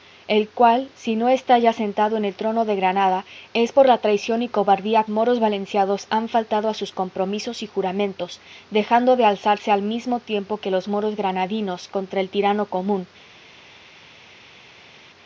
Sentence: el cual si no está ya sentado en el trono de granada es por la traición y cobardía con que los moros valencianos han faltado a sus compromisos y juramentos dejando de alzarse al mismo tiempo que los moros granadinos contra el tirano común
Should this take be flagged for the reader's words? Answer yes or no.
yes